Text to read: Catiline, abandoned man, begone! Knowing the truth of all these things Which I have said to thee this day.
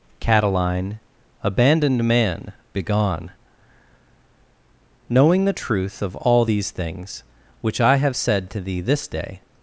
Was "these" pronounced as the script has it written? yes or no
yes